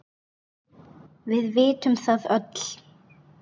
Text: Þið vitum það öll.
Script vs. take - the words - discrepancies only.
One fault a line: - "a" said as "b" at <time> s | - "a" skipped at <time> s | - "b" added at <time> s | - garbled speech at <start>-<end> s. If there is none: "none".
- "Þið" said as "Við" at 1.3 s